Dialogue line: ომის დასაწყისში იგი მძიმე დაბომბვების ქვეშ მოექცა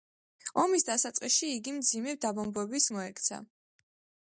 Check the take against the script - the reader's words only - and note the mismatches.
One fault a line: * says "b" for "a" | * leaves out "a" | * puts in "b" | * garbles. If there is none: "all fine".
* leaves out "ქვეშ"